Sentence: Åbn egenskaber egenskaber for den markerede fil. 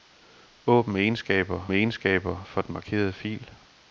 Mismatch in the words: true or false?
false